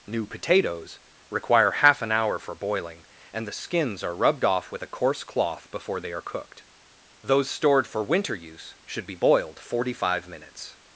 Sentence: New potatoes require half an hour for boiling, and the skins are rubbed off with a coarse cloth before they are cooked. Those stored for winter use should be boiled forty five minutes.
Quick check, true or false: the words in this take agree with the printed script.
true